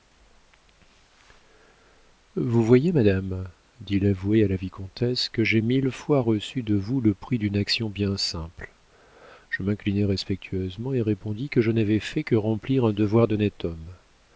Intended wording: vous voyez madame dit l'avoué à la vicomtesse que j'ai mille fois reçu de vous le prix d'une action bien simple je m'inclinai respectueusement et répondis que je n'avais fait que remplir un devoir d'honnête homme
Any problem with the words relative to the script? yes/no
no